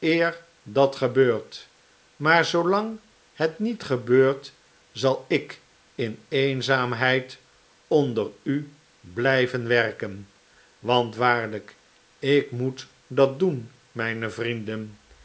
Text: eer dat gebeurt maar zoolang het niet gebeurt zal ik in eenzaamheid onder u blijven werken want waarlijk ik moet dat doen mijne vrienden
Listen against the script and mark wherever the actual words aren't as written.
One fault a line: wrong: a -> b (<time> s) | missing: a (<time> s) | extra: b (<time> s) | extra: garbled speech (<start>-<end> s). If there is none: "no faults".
no faults